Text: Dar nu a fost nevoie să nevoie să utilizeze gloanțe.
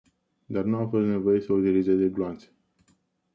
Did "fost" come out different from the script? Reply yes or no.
no